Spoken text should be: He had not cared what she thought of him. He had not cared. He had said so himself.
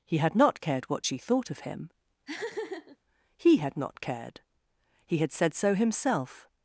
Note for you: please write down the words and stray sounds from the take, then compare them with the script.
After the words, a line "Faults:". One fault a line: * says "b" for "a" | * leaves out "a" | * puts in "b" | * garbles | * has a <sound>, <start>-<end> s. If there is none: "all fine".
He had not cared what she thought of him. He had not cared. He had said so himself.
Faults:
* has a laugh, 2.3-3.0 s